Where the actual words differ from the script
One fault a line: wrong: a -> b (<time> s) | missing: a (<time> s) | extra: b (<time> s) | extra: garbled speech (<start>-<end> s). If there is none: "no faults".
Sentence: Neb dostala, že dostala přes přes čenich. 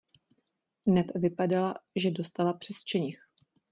wrong: dostala -> vypadala (1.1 s)
missing: přes (2.8 s)